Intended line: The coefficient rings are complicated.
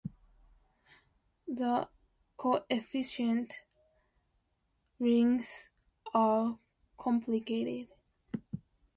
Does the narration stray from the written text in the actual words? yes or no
no